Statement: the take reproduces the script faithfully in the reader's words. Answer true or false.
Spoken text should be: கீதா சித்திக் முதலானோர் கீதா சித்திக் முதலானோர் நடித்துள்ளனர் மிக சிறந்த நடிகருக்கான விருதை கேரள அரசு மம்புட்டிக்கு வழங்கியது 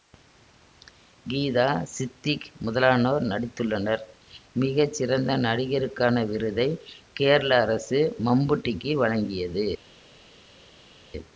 false